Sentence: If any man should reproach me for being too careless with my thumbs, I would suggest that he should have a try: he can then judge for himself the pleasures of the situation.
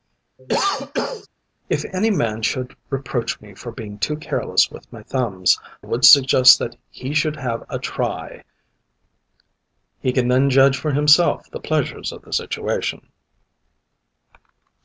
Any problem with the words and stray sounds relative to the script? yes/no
yes